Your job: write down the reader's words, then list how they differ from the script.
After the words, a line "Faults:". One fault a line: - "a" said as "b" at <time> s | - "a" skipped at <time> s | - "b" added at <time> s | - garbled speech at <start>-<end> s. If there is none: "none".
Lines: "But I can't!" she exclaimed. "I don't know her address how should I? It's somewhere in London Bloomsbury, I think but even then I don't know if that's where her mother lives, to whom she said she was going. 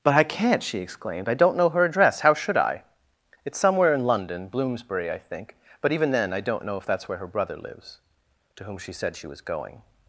"But I can't!" she exclaimed. "I don't know her address how should I? It's somewhere in London Bloomsbury, I think but even then I don't know if that's where her brother lives, to whom she said she was going.
Faults:
- "mother" said as "brother" at 7.3 s